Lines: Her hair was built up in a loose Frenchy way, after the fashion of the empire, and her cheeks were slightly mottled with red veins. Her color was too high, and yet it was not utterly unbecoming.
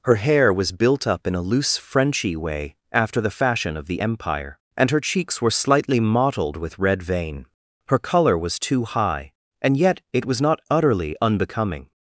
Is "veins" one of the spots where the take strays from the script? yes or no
yes